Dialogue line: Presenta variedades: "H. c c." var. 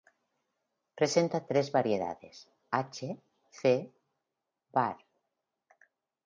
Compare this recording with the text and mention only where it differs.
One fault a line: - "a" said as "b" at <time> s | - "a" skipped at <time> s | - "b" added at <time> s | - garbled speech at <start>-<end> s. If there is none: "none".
- "tres" added at 1.4 s
- "c" skipped at 3.9 s